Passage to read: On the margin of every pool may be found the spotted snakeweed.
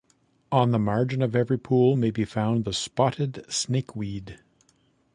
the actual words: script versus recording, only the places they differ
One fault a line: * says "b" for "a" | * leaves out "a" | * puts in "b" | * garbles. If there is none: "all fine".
all fine